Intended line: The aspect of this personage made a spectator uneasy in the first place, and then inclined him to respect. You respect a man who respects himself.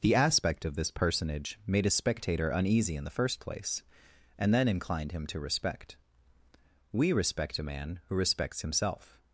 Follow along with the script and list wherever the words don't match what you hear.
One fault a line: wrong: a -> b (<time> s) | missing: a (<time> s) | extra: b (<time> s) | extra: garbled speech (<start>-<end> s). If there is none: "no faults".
wrong: You -> We (6.9 s)